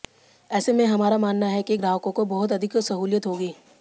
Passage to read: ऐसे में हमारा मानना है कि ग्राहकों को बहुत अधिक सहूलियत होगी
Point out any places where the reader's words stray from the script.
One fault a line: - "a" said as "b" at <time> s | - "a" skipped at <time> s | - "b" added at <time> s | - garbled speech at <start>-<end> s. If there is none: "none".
none